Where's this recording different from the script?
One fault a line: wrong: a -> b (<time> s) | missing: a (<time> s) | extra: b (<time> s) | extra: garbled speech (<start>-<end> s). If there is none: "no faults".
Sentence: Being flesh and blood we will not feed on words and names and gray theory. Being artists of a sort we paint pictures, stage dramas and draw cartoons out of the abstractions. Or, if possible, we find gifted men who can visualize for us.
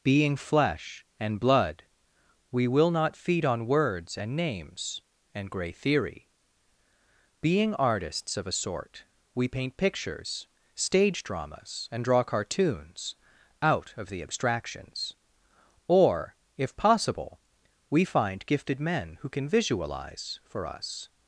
no faults